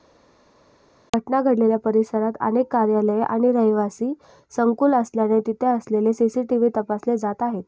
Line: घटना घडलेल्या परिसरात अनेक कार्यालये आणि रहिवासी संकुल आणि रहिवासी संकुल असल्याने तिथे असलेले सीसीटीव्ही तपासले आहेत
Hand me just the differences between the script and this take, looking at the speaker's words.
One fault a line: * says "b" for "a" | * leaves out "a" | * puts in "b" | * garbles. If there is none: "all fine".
* leaves out "आणि रहिवासी संकुल"
* puts in "जात"